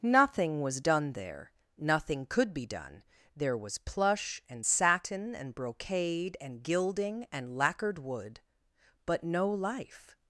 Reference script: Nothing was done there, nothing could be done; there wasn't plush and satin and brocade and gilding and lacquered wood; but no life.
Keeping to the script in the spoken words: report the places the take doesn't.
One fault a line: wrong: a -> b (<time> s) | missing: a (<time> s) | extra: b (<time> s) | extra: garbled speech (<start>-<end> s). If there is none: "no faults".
wrong: wasn't -> was (3.6 s)